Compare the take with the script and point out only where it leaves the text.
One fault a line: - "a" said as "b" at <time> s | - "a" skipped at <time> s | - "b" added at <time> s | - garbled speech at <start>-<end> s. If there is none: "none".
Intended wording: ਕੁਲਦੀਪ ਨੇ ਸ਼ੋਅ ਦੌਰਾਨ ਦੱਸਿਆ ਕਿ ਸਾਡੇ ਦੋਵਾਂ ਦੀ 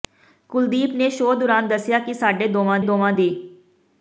- "ਦੋਵਾਂ" added at 2.8 s